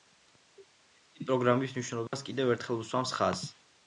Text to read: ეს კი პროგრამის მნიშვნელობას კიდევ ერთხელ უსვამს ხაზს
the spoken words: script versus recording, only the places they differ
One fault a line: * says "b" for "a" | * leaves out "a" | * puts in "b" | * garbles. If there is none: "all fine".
all fine